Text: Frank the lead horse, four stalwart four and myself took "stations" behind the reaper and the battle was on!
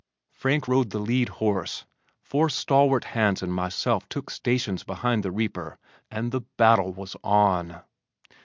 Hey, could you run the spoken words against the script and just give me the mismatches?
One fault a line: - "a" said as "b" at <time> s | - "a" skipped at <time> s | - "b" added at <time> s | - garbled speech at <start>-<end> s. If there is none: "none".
- "rode" added at 0.6 s
- "four" said as "hands" at 3.0 s